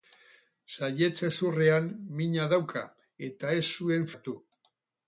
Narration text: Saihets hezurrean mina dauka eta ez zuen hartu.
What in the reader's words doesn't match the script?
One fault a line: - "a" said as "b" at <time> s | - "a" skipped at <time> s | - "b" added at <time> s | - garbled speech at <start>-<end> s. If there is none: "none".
none